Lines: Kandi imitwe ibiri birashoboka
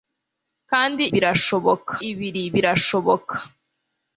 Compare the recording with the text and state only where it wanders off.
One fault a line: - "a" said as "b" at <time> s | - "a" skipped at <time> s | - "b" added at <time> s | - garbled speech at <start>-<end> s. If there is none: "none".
- "imitwe" said as "birashoboka" at 1.1 s